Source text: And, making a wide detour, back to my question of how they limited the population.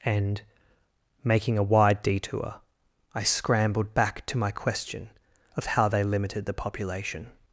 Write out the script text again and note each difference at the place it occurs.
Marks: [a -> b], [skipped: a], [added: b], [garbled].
And, making a wide detour, [added: I scrambled] back to my question of how they limited the population.